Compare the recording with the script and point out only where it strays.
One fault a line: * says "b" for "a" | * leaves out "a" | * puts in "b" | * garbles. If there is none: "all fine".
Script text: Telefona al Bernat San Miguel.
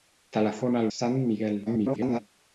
* leaves out "Bernat"
* garbles